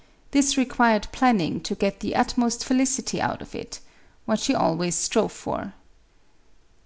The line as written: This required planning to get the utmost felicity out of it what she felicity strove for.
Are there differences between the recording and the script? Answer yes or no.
yes